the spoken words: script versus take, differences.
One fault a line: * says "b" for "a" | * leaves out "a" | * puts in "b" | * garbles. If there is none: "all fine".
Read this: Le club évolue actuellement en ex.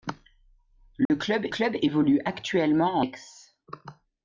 * puts in "club"
* leaves out "en"